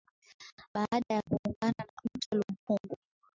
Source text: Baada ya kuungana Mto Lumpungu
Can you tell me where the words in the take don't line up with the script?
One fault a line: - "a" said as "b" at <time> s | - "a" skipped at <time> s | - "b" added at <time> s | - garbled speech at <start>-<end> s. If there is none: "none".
- "na" added at 1.8 s